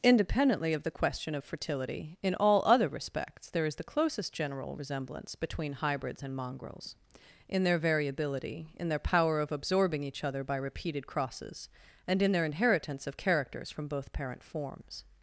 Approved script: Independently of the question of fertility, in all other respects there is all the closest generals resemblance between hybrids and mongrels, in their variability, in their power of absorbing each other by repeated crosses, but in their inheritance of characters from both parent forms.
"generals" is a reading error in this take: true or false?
true